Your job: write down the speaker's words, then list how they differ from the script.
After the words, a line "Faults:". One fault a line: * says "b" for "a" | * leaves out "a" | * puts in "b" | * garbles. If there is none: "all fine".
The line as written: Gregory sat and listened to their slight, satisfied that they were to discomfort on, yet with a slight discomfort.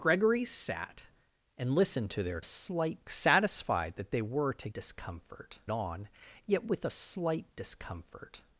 Gregory sat and listened to their slight, satisfied that they were to discomfort on, yet with a slight discomfort.
Faults:
all fine